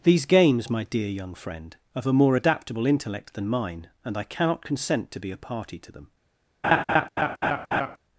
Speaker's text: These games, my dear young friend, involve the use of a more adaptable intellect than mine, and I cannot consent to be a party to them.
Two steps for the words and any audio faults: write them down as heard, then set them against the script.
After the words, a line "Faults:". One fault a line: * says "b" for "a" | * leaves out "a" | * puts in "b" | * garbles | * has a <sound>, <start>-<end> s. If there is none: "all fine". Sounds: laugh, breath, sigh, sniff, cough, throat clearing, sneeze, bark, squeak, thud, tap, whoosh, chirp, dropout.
These games, my dear young friend, of a more adaptable intellect than mine, and I cannot consent to be a party to them.
Faults:
* leaves out "involve the use"
* has a laugh, 6.6-8.0 s